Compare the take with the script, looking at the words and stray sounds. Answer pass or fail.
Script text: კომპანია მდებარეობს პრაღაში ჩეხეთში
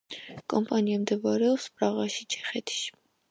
pass